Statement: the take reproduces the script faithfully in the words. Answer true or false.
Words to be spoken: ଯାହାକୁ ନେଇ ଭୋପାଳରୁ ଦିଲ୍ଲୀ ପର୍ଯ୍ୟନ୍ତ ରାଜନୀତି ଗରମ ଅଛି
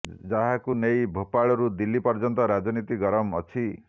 true